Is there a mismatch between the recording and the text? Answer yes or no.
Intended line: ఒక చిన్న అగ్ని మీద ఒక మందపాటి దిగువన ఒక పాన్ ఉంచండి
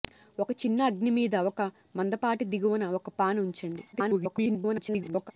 yes